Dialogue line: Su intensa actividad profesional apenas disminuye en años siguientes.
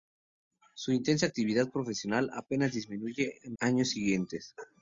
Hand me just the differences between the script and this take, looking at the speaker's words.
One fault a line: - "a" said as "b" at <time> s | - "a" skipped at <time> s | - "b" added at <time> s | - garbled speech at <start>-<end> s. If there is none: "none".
none